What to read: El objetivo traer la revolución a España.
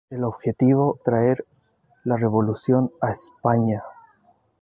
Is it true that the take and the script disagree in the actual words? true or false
false